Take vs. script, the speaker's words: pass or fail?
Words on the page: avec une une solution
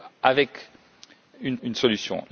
pass